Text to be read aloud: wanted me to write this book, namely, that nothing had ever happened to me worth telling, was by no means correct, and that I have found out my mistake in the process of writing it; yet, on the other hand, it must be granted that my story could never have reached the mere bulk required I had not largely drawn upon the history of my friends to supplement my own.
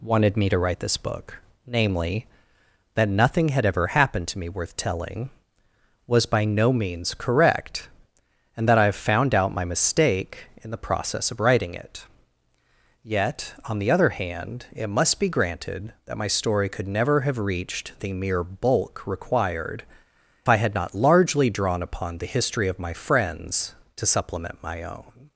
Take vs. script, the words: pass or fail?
pass